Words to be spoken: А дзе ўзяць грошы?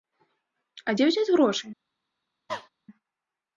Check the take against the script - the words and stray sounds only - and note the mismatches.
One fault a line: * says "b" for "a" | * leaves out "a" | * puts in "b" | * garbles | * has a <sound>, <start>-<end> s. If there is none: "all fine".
* has a cough, 2.5-2.7 s